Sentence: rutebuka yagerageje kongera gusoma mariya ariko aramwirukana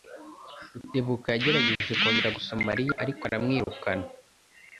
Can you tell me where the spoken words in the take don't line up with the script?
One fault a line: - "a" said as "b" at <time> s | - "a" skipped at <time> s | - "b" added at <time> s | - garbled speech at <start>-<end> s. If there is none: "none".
none